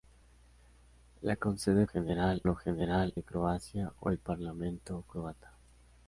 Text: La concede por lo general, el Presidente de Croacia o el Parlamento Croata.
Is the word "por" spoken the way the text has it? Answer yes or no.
no